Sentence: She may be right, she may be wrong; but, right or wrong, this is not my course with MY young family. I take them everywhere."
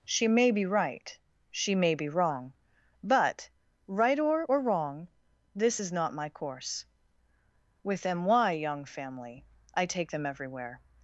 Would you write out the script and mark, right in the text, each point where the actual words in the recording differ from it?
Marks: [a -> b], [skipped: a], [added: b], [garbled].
She may be right, she may be wrong; but, right or [added: or] wrong, this is not my course with MY young family. I take them everywhere."